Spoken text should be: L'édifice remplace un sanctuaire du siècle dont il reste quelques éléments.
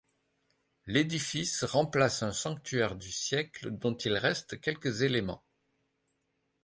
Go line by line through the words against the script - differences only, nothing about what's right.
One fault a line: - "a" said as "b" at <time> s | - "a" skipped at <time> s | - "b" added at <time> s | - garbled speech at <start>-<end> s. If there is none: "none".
none